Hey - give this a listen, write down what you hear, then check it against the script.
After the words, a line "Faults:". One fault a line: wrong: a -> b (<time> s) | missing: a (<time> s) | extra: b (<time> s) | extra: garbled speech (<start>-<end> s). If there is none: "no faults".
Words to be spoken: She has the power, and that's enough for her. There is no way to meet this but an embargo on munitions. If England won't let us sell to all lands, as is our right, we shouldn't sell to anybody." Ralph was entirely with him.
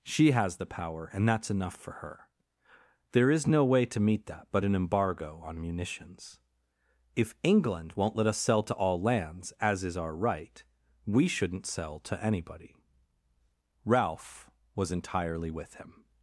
She has the power, and that's enough for her. There is no way to meet that but an embargo on munitions. If England won't let us sell to all lands, as is our right, we shouldn't sell to anybody." Ralph was entirely with him.
Faults:
wrong: this -> that (4.3 s)